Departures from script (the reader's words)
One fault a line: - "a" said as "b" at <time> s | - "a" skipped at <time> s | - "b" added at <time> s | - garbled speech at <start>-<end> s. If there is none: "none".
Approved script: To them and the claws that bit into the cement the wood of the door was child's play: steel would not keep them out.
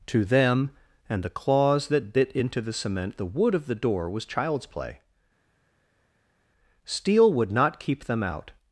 none